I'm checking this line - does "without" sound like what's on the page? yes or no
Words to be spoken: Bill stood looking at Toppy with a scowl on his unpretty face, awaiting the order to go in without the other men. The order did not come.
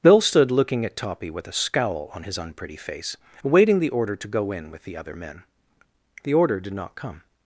no